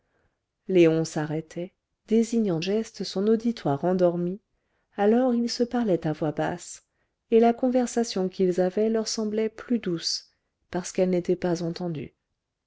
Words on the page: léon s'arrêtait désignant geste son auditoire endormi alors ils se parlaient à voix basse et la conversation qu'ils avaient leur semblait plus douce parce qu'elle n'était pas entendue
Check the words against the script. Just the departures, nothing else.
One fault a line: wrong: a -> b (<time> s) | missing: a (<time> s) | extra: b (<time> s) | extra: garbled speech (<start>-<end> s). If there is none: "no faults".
no faults